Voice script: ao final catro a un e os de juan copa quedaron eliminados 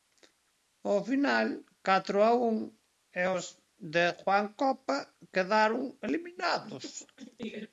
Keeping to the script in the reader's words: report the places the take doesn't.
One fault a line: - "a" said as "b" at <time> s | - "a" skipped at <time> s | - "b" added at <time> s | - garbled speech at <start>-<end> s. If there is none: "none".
none